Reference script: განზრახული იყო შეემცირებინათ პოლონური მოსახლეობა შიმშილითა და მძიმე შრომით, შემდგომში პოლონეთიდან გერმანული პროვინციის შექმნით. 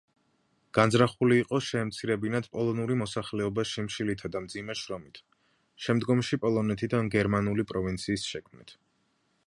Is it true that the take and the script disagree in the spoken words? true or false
false